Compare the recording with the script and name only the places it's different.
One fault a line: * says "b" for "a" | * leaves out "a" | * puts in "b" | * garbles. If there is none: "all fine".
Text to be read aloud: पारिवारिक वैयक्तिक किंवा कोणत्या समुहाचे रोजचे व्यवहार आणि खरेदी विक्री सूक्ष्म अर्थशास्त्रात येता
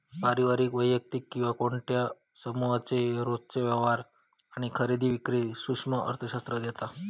all fine